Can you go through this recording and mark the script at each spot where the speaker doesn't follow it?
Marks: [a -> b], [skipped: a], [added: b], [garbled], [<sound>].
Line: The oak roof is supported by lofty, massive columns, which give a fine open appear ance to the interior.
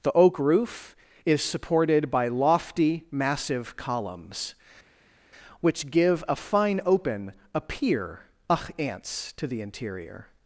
The oak roof is supported by lofty, massive columns, which give a fine open [appear ance -> a pier ach ants] to the interior.